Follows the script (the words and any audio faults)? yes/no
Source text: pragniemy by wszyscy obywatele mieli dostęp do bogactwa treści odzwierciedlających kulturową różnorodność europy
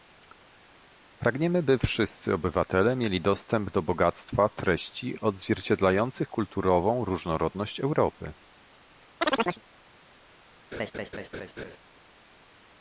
no